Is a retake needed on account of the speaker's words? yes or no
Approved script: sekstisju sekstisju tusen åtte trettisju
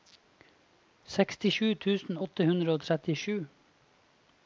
yes